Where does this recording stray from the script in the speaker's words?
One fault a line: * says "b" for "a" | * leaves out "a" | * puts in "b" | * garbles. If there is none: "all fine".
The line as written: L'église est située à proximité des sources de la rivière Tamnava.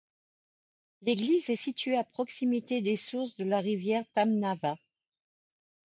all fine